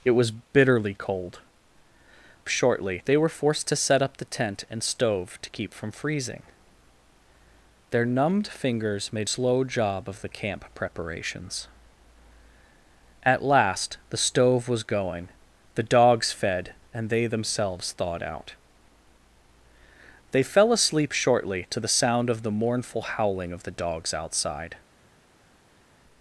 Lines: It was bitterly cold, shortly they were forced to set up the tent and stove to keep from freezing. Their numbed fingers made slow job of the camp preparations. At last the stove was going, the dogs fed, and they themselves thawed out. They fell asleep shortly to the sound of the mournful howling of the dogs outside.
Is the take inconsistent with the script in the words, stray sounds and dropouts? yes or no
no